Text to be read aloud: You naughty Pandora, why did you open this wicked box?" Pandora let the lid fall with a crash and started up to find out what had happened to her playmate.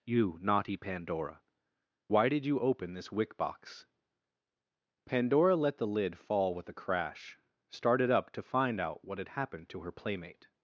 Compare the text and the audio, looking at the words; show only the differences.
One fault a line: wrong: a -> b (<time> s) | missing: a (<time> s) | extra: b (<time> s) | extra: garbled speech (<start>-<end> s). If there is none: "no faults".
wrong: wicked -> wick (3.1 s)
missing: and (7.4 s)